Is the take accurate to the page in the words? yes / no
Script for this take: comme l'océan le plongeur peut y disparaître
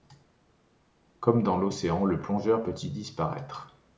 no